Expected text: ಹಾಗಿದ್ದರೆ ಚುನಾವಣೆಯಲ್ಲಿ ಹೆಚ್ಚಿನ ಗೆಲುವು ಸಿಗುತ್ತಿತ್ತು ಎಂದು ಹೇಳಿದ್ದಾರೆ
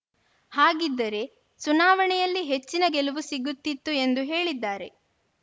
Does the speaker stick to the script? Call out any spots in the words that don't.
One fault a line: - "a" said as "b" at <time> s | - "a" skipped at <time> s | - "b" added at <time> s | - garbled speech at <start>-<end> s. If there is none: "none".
none